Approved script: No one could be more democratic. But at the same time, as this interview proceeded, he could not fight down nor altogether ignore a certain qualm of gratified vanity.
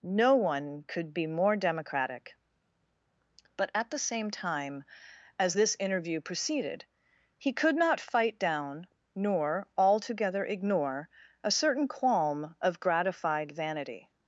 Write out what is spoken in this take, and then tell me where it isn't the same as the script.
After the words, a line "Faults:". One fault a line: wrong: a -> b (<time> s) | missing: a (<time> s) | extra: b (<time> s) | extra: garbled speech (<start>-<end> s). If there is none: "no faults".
No one could be more democratic. But at the same time, as this interview proceeded, he could not fight down nor altogether ignore a certain qualm of gratified vanity.
Faults:
no faults